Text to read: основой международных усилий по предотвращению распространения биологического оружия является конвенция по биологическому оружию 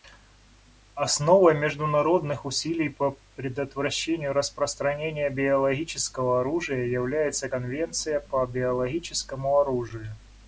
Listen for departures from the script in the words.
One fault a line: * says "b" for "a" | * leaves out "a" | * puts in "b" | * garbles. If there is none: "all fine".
all fine